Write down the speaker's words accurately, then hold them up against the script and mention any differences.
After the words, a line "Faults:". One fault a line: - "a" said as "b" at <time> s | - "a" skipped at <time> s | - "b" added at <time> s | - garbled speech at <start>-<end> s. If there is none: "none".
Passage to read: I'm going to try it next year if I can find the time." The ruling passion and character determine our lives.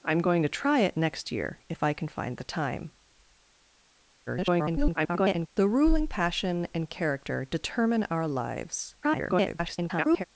I'm going to try it next year if I can find the time." [garbled] The ruling passion and character determine our lives. [garbled]
Faults:
- garbled speech at 4.3-5.5 s
- garbled speech at 9.0-10.2 s